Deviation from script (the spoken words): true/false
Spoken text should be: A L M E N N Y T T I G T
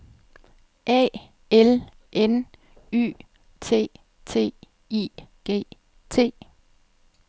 true